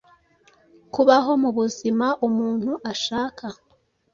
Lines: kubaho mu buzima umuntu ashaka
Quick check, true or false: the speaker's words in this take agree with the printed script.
true